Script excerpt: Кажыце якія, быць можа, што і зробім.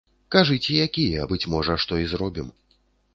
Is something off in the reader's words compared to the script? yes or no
no